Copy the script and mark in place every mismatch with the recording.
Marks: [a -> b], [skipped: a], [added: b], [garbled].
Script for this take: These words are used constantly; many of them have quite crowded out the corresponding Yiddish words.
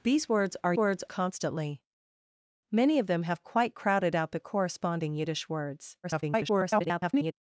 These words are [used -> words] constantly; many of them have quite crowded out the corresponding Yiddish words. [garbled]